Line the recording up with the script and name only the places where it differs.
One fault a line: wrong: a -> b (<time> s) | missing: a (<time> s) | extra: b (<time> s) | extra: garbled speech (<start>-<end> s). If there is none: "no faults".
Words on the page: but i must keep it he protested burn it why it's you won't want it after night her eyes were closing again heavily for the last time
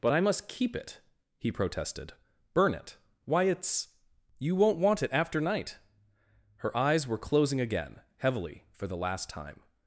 no faults